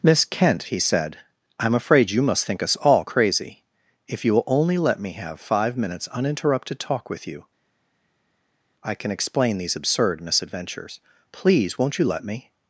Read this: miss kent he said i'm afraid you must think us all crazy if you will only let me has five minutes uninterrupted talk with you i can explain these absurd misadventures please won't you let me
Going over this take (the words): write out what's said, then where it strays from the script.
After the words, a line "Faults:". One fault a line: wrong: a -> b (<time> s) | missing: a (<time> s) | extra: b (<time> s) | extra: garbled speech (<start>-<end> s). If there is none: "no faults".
miss kent he said i'm afraid you must think us all crazy if you will only let me have five minutes uninterrupted talk with you i can explain these absurd misadventures please won't you let me
Faults:
wrong: has -> have (5.1 s)